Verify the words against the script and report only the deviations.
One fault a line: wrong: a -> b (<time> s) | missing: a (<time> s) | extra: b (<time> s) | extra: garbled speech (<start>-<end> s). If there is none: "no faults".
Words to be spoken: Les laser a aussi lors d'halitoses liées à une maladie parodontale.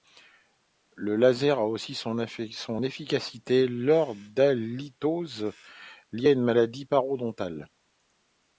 wrong: Les -> Le (0.9 s)
extra: son efficacité (1.9 s)